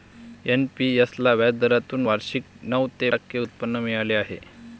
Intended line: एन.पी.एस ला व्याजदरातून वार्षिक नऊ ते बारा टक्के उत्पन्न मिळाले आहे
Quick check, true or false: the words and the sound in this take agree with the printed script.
false